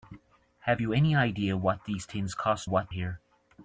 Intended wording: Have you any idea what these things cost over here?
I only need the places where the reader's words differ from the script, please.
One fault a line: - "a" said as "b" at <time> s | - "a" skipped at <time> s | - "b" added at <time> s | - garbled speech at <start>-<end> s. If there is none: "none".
- "over" said as "what" at 2.6 s